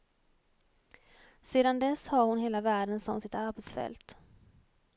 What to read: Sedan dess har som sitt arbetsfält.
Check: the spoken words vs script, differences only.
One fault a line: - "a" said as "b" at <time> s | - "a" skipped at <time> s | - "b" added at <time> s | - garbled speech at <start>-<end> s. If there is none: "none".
- "hon hela världen" added at 2.2 s